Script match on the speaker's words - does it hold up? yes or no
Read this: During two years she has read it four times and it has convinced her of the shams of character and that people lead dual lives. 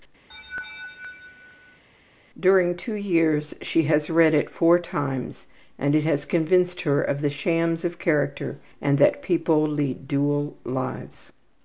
yes